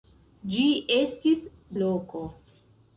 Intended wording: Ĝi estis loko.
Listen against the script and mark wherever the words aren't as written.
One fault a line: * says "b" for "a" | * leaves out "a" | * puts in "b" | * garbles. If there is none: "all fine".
all fine